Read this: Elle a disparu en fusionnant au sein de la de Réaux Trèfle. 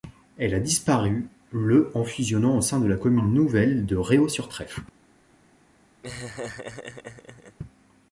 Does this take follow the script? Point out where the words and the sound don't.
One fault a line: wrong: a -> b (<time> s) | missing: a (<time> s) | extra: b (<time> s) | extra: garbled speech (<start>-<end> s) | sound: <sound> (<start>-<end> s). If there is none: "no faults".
extra: le (1.5 s)
extra: commune nouvelle (3.0 s)
extra: sur (4.3 s)
sound: laugh (6.0-7.6 s)